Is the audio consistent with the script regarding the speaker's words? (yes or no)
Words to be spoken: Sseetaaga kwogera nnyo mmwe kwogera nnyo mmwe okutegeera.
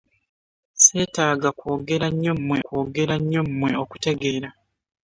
yes